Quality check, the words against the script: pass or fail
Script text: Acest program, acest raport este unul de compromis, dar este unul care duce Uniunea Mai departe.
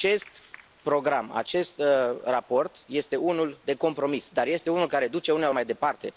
pass